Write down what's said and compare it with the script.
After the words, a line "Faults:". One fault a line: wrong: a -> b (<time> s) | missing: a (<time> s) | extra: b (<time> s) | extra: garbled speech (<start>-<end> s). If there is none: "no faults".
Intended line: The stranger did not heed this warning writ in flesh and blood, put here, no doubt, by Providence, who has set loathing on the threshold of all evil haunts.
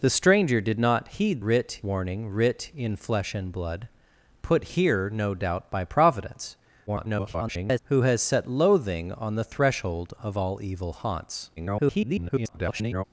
The stranger did not heed writ warning writ in flesh and blood, put here, no doubt, by Providence, [garbled] who has set loathing on the threshold of all evil haunts. [garbled]
Faults:
wrong: this -> writ (1.4 s)
extra: garbled speech (6.9-7.8 s)
extra: garbled speech (11.6-13.0 s)